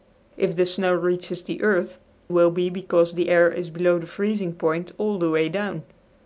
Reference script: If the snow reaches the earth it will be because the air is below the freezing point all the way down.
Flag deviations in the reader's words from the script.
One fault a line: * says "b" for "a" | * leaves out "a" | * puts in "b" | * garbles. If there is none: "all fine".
* leaves out "it"